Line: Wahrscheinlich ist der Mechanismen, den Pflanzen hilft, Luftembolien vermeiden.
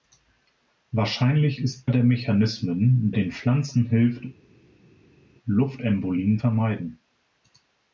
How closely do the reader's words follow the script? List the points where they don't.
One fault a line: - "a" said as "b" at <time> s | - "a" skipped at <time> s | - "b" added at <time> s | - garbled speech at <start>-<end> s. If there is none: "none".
none